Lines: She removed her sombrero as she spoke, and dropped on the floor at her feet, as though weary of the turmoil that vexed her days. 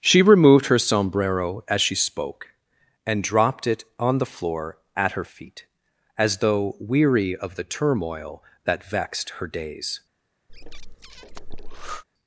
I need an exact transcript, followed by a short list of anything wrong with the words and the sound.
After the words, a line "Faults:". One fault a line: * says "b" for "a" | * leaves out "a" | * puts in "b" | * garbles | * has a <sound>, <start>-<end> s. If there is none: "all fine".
She removed her sombrero as she spoke, and dropped it on the floor at her feet, as though weary of the turmoil that vexed her days.
Faults:
* puts in "it"
* has a breath, 10.5-12.0 s